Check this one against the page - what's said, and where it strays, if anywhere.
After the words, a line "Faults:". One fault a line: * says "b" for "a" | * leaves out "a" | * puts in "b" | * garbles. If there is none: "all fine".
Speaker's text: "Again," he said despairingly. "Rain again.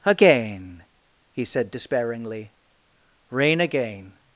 "Again," he said despairingly. "Rain again.
Faults:
all fine